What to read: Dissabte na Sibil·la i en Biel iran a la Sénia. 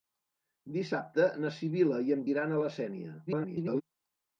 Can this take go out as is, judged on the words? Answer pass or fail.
fail